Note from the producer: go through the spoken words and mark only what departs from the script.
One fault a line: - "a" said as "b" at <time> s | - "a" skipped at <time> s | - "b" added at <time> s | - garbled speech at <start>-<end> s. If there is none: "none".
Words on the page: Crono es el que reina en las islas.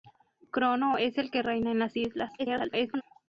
- garbled speech at 2.4-3.0 s